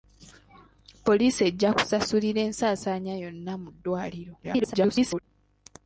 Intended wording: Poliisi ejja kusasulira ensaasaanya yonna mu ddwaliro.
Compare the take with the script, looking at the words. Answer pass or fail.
fail